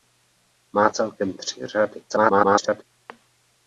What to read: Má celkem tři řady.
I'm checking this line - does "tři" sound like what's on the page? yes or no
yes